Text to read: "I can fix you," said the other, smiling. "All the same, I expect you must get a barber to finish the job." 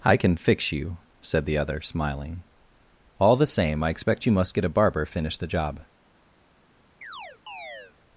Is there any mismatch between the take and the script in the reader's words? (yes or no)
yes